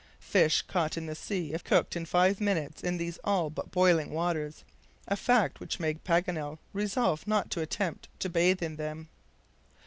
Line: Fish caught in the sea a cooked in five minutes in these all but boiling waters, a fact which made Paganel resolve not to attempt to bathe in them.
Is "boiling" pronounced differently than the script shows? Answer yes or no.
no